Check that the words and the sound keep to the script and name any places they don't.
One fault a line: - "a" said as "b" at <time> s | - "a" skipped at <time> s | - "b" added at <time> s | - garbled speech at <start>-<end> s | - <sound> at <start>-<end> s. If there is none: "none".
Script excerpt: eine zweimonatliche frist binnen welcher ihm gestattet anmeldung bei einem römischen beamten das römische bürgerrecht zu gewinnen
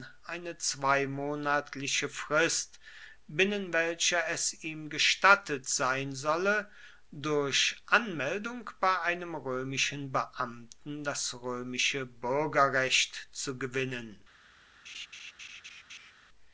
- "es" added at 4.3 s
- "sein solle durch" added at 5.7 s
- laugh at 14.9-16.1 s